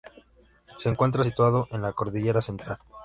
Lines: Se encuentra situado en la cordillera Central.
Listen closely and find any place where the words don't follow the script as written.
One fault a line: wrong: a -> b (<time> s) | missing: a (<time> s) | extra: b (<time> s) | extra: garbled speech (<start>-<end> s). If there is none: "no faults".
no faults